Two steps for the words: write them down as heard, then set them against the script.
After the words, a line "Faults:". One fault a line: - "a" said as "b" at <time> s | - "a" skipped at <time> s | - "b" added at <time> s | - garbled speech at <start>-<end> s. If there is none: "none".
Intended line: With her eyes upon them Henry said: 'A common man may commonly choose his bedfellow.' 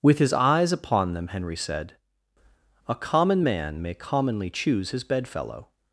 With his eyes upon them Henry said: 'A common man may commonly choose his bedfellow.'
Faults:
- "her" said as "his" at 0.2 s